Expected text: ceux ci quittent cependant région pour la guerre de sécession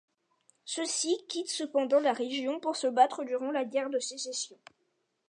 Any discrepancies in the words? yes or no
yes